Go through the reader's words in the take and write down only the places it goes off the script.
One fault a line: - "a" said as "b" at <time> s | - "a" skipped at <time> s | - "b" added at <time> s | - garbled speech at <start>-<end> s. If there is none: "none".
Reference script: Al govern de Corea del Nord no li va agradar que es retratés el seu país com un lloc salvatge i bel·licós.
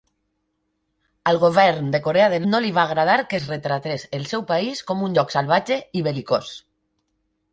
- "Nord" skipped at 2.5 s